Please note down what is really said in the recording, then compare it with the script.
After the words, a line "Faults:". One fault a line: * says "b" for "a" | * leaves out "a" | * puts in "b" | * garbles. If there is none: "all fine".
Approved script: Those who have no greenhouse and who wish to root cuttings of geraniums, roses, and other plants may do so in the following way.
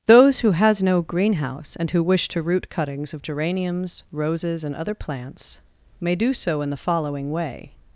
Those who has no greenhouse and who wish to root cuttings of geraniums, roses, and other plants may do so in the following way.
Faults:
* says "has" for "have"